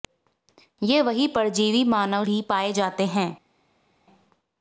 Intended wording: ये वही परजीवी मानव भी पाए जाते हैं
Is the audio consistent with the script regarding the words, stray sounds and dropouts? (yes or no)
yes